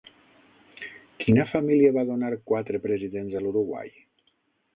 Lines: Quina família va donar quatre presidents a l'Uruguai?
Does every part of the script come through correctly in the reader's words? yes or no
yes